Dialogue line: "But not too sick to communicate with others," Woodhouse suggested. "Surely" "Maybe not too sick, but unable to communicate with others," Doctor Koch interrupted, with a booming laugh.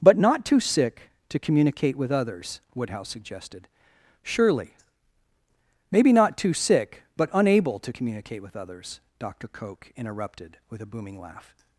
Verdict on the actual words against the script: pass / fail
pass